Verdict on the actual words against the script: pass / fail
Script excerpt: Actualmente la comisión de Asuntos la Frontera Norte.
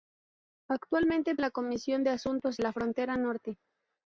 pass